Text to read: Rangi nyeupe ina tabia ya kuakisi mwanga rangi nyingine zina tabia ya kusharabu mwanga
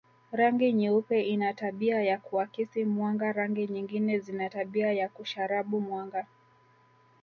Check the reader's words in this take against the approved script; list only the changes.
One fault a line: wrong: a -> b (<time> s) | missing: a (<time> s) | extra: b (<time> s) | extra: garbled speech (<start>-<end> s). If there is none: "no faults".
no faults